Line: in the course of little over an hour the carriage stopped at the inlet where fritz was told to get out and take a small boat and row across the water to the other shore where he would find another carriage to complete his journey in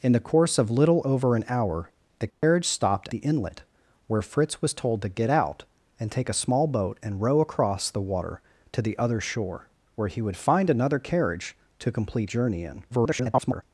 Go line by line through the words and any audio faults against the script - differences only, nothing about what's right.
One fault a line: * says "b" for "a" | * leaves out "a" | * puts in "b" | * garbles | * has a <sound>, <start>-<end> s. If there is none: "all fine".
* has a dropout, 2.3-2.4 s
* leaves out "at"
* leaves out "his"
* garbles